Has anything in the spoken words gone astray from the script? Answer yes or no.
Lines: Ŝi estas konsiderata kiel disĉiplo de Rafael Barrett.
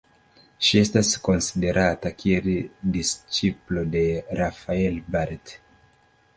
no